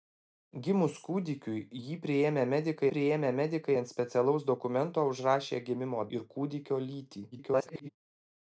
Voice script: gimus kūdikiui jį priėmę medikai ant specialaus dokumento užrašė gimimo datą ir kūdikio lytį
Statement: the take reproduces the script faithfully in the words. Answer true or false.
false